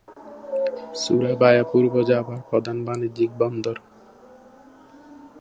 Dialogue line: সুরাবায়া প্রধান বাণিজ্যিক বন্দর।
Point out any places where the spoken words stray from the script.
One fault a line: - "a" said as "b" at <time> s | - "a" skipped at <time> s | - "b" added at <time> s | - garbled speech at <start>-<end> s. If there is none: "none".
- "পূর্ব জাভার" added at 1.7 s